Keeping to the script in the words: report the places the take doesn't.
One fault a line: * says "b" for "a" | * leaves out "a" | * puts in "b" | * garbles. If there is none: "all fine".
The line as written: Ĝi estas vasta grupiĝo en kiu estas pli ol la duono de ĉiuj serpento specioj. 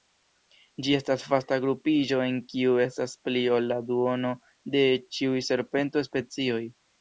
all fine